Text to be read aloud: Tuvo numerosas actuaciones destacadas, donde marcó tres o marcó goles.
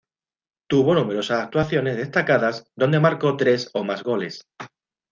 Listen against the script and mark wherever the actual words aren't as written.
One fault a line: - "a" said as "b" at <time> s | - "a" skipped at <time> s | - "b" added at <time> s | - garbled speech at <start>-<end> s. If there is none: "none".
- "marcó" said as "más" at 3.8 s